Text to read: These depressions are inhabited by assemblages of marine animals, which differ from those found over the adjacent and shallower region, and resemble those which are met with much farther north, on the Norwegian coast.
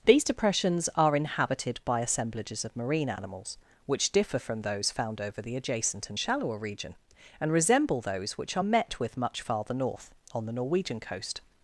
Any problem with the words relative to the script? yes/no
no